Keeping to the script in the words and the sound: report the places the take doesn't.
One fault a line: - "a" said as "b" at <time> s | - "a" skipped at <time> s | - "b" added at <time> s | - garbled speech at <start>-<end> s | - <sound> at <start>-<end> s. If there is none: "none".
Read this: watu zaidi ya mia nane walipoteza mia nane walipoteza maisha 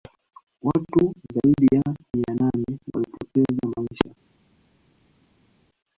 - "mia nane walipoteza" skipped at 3.7 s